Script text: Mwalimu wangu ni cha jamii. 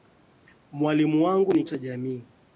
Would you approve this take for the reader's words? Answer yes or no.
yes